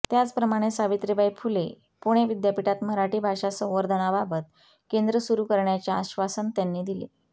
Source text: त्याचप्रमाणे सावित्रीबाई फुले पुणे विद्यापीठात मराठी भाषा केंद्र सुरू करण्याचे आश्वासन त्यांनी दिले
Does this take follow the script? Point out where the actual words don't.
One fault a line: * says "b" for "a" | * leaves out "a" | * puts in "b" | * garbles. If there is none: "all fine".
* puts in "संवर्धनाबाबत"